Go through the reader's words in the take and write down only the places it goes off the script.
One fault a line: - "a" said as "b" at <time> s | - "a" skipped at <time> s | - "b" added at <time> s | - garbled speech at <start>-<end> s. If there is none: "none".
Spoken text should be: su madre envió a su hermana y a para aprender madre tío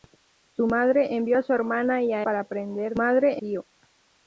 none